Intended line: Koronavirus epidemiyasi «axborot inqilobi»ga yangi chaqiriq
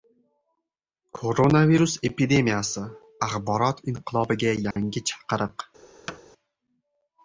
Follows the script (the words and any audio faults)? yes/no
no